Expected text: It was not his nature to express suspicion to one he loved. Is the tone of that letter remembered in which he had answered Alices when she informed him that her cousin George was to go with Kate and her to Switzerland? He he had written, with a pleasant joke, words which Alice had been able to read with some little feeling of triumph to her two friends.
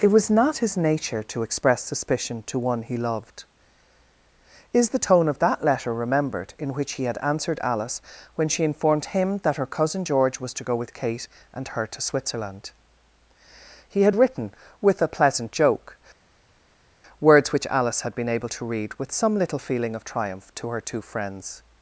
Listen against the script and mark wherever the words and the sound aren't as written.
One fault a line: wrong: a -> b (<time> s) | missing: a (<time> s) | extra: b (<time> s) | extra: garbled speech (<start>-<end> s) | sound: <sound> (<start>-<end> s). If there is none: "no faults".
wrong: Alices -> Alice (7.6 s)
missing: he (14.0 s)